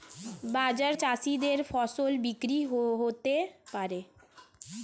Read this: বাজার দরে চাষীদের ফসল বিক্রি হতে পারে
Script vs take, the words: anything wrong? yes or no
yes